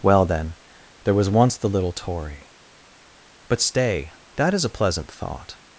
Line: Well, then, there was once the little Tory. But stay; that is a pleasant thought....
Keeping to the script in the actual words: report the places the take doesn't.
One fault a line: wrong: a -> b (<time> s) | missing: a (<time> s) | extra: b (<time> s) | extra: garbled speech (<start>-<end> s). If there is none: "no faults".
no faults